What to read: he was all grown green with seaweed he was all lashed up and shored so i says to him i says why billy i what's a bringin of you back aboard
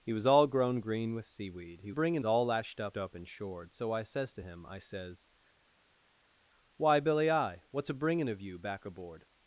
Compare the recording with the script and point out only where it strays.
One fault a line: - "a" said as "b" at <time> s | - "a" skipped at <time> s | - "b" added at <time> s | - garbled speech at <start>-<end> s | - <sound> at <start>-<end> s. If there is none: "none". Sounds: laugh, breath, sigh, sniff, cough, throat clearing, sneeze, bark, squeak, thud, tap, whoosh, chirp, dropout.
- "was" said as "bringin" at 1.9 s
- "up" added at 3.0 s